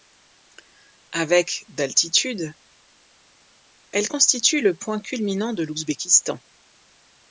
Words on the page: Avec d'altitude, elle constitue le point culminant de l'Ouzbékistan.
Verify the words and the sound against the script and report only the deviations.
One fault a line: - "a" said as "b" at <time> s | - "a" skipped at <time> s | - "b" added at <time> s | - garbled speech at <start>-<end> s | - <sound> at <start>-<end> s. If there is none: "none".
none